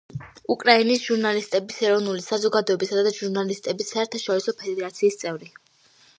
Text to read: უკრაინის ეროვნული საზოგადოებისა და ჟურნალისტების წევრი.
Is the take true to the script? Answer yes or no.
no